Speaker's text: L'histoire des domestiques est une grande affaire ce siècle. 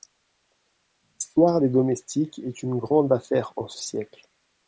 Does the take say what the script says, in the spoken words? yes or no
no